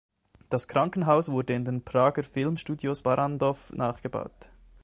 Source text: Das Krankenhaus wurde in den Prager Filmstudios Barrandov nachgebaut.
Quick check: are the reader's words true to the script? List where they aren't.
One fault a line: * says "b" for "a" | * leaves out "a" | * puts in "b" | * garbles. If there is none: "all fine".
all fine